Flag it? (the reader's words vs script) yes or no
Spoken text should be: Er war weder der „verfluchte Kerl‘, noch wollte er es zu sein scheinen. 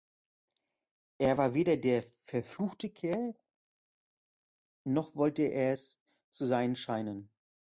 no